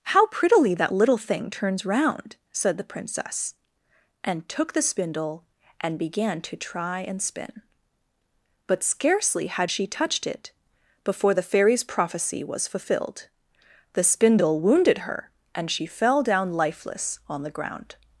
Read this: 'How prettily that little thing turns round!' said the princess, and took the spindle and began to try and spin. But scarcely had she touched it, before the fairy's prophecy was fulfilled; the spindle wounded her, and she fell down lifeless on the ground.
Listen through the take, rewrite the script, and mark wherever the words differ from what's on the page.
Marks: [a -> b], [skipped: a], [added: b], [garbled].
'How prettily that little thing turns round!' said the princess, and took the spindle and began to try and spin. But scarcely had she touched it, before the fairy's prophecy was fulfilled; the spindle wounded her, and she fell down lifeless on the ground.